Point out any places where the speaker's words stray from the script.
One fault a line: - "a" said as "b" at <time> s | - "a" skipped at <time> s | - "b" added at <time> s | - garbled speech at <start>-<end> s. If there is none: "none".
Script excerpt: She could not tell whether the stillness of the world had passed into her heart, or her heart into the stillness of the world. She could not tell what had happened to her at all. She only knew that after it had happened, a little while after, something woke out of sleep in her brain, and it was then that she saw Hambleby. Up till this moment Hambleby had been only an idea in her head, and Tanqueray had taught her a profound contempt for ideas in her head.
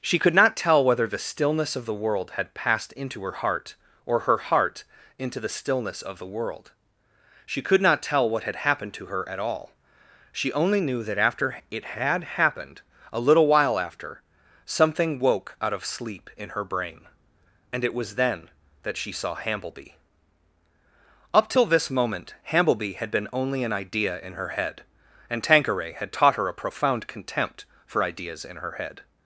none